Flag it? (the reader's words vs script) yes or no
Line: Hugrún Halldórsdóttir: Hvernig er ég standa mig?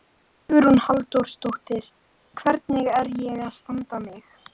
yes